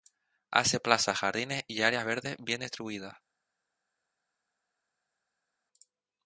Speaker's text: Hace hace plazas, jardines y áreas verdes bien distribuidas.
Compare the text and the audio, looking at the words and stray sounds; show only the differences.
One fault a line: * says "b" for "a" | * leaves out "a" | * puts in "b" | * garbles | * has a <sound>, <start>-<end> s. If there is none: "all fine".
* leaves out "hace"